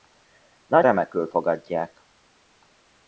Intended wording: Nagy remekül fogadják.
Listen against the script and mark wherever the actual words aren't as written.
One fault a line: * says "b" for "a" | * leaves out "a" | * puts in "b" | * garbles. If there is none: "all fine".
all fine